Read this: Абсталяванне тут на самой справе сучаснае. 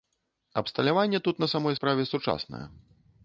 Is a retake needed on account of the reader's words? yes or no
no